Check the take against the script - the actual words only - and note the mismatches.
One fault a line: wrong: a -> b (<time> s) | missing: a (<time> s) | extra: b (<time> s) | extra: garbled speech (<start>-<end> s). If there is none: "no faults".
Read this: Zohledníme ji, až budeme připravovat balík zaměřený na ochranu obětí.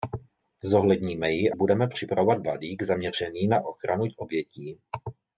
missing: až (1.5 s)